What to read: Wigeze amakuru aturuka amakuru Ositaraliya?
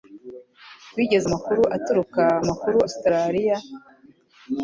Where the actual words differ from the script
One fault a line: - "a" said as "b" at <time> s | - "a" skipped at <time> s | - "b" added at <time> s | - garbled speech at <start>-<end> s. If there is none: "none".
none